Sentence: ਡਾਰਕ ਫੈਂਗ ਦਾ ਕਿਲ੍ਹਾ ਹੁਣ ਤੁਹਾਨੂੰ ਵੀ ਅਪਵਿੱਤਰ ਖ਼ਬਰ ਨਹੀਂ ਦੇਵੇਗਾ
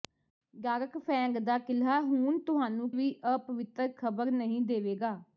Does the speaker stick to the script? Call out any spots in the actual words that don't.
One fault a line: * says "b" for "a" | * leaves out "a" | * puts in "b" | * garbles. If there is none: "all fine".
all fine